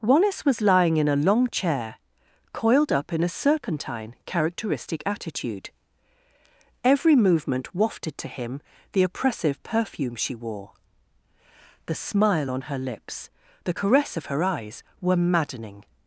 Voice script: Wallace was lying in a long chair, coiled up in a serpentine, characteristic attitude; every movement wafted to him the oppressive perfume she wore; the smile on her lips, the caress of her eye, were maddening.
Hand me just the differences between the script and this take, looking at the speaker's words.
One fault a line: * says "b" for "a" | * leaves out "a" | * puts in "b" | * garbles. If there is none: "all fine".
* says "eyes" for "eye"